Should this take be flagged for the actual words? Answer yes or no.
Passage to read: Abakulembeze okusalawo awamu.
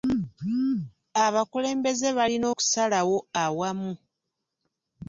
yes